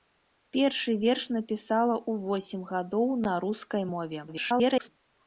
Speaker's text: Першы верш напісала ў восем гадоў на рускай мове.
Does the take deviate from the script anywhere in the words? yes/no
yes